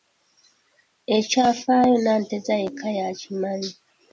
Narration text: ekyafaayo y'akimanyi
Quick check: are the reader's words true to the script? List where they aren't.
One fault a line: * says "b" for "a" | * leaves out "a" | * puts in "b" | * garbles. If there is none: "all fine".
* puts in "nanteza yekka"